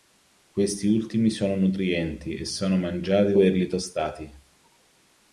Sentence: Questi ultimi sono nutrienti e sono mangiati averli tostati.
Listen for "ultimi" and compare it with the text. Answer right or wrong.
right